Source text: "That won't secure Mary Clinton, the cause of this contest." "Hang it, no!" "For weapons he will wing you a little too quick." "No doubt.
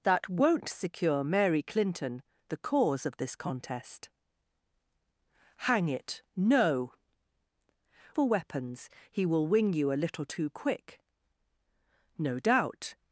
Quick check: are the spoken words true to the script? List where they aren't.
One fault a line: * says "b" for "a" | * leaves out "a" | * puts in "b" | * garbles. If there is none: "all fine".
all fine